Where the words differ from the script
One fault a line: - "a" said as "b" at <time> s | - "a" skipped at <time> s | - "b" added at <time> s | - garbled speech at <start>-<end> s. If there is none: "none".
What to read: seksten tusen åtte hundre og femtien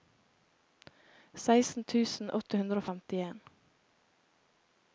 none